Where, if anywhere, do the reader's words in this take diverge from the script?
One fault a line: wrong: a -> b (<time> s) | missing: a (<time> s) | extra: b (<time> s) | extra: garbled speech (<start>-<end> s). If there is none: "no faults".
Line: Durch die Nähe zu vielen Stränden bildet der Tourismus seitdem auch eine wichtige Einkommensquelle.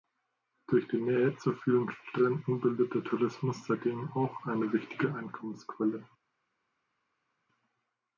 no faults